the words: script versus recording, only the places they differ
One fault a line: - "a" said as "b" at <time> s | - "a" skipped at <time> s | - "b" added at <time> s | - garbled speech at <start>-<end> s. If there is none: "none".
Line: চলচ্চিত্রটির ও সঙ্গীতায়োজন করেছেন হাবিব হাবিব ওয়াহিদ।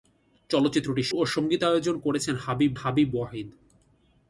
none